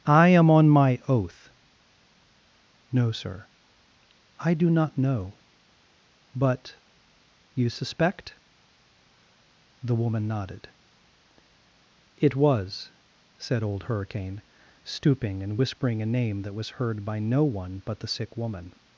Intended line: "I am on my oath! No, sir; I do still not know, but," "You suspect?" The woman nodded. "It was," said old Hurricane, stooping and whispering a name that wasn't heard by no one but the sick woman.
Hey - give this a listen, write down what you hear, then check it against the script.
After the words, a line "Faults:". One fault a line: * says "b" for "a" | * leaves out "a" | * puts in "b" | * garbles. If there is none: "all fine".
"I am on my oath! No, sir; I do not know, but," "You suspect?" The woman nodded. "It was," said old Hurricane, stooping and whispering a name that was heard by no one but the sick woman.
Faults:
* leaves out "still"
* says "was" for "wasn't"